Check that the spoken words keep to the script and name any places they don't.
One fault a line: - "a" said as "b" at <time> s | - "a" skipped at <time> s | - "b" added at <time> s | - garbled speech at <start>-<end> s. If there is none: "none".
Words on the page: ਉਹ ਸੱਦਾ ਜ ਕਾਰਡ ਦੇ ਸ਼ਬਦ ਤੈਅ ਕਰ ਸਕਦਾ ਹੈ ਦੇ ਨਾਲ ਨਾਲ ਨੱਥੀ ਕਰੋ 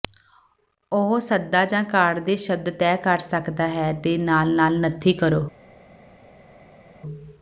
none